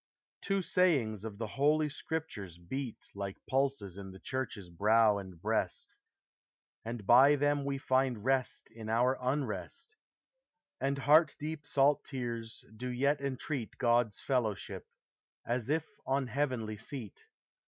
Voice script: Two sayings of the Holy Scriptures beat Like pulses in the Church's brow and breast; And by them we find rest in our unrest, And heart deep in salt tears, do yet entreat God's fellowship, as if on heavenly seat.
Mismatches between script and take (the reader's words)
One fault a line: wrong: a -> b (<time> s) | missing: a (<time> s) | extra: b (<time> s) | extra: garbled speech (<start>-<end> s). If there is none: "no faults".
missing: in (11.7 s)